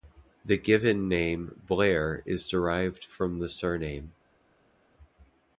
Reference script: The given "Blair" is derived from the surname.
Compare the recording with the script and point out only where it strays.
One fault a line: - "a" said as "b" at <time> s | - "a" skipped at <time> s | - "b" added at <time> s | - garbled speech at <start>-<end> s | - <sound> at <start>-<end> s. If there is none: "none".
- "name" added at 1.1 s